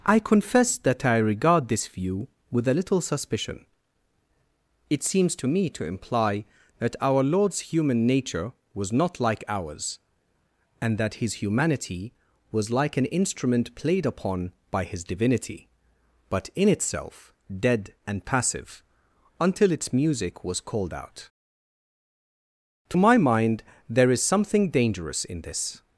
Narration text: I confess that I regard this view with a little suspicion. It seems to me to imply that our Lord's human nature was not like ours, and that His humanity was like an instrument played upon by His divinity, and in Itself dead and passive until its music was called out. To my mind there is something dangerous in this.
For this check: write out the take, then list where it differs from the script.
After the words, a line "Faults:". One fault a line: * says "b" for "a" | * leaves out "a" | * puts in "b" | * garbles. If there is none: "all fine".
I confess that I regard this view with a little suspicion. It seems to me to imply that our Lord's human nature was not like ours, and that His humanity was like an instrument played upon by His divinity, but in Itself dead and passive until its music was called out. To my mind there is something dangerous in this.
Faults:
* says "but" for "and"